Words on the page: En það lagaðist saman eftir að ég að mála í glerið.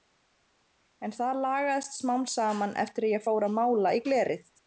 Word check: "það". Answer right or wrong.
right